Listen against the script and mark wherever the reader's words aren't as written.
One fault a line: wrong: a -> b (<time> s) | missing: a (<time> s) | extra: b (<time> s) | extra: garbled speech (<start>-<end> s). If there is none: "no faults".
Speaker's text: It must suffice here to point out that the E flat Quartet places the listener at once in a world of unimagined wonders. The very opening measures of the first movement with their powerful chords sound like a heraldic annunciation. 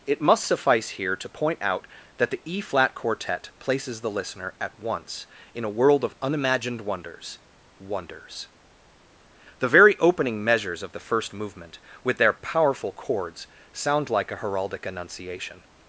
extra: wonders (7.8 s)